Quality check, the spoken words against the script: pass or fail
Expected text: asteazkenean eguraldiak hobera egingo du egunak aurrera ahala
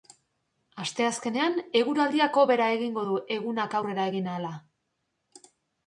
fail